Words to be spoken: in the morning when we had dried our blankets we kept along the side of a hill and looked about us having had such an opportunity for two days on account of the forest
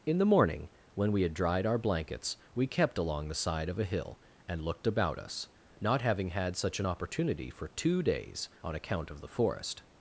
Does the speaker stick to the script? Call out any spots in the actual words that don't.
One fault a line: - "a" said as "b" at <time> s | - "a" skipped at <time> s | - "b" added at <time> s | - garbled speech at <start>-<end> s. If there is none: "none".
- "not" added at 5.8 s